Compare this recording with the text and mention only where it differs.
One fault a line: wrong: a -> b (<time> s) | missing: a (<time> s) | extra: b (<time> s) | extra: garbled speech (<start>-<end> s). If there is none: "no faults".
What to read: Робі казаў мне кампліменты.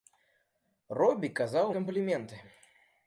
missing: мне (1.7 s)